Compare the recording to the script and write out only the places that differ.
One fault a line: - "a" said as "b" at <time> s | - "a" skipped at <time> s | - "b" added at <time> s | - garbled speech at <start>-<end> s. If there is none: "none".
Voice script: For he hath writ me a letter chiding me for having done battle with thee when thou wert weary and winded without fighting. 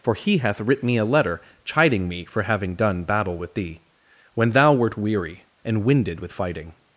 - "without" said as "with" at 6.2 s